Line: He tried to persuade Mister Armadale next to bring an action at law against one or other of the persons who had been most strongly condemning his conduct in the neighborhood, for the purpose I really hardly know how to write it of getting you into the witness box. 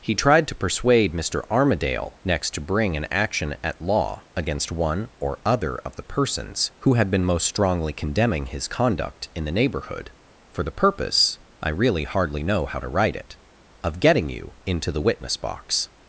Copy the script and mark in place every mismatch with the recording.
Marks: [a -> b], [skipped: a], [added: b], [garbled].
He tried to persuade Mister Armadale next to bring an action at law against one or other of the persons who had been most strongly condemning his conduct in the neighborhood, for the purpose I really hardly know how to write it of getting you into the witness box.